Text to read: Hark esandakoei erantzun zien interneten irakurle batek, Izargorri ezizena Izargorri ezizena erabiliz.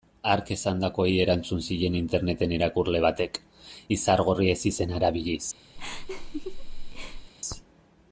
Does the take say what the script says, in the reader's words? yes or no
no